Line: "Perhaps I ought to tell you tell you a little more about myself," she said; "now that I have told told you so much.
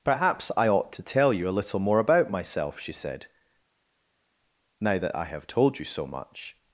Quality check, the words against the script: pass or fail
fail